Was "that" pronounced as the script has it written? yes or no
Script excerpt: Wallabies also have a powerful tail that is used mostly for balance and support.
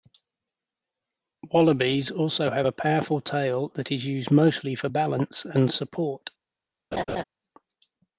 yes